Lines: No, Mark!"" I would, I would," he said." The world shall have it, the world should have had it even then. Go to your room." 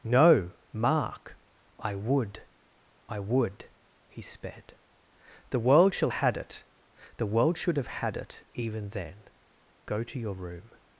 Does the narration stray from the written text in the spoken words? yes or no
yes